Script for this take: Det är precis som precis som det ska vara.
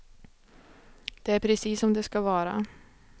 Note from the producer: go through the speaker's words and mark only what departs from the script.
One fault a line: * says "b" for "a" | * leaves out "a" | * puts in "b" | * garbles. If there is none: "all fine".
* leaves out "precis som"